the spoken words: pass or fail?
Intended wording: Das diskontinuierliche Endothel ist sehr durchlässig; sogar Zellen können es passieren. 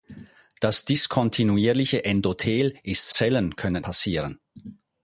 fail